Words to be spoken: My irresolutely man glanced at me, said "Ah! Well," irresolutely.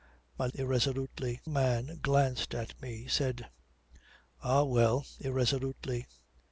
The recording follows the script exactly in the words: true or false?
true